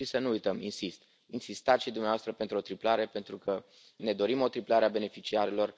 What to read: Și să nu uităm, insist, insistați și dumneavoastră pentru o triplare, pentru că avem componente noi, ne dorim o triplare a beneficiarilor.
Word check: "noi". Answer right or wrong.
wrong